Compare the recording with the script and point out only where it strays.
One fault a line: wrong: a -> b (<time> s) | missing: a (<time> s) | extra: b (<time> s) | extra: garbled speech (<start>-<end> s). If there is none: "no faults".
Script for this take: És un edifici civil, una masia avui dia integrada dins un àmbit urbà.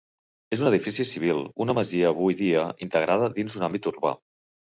no faults